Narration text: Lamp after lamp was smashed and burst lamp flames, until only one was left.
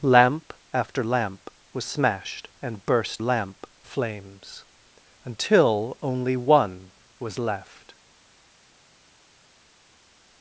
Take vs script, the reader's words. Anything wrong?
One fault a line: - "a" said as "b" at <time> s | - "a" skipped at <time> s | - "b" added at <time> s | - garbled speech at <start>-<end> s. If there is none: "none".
none